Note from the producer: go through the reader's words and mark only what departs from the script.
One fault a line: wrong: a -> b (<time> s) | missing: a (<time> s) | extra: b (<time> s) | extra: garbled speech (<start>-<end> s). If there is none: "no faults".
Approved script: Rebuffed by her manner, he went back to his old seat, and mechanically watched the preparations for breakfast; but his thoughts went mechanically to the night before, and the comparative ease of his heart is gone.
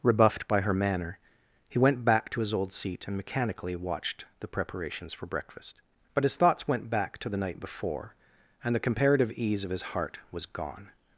wrong: mechanically -> back (6.9 s)
wrong: is -> was (10.3 s)